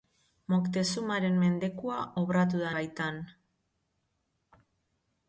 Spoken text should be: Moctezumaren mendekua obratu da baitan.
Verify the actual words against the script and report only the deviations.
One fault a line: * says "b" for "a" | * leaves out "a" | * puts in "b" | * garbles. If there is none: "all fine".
all fine